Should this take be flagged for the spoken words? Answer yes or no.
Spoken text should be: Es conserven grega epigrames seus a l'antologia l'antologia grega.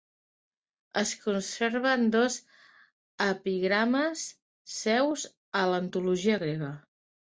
yes